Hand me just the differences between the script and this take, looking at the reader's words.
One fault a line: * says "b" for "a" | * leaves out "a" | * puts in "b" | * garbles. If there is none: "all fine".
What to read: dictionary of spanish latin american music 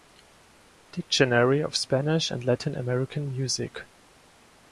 * puts in "and"